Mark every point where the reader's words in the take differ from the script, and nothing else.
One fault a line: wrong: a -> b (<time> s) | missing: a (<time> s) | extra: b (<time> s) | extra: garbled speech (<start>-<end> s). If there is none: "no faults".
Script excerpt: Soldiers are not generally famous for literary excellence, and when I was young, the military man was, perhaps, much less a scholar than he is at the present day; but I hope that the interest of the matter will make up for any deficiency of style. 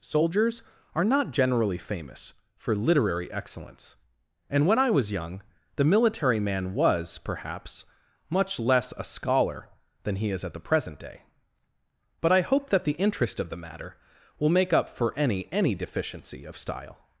extra: any (15.5 s)